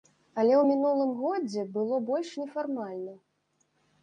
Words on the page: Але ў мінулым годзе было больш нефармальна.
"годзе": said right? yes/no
yes